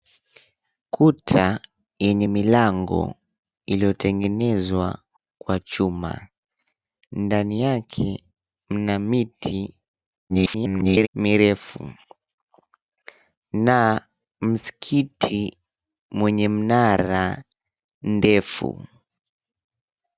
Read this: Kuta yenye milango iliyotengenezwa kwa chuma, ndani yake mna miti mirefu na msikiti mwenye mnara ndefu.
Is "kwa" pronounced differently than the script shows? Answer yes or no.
no